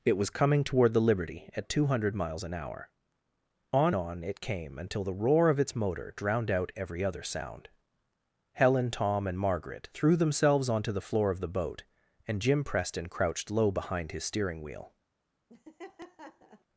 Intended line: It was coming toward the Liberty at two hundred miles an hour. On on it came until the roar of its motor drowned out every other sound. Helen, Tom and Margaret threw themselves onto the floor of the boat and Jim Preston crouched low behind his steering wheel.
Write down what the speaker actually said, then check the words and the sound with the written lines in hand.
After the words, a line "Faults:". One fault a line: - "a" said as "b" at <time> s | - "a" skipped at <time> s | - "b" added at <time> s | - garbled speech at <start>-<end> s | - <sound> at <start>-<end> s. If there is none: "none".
It was coming toward the Liberty at two hundred miles an hour. On on it came until the roar of its motor drowned out every other sound. Helen, Tom and Margaret threw themselves onto the floor of the boat and Jim Preston crouched low behind his steering wheel.
Faults:
- laugh at 15.5-16.7 s